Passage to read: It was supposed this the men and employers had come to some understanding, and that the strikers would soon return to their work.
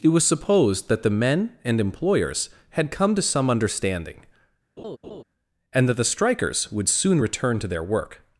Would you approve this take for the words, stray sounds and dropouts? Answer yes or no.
no